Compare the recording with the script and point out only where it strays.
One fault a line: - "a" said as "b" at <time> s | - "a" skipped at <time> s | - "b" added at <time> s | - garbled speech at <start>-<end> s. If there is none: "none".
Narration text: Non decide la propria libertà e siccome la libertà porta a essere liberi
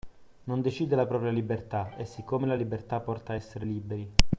none